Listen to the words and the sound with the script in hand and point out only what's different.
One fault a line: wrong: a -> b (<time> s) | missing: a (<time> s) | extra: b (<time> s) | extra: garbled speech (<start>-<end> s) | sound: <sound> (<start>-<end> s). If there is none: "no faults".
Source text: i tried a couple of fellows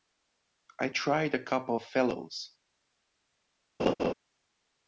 sound: laugh (3.8-4.1 s)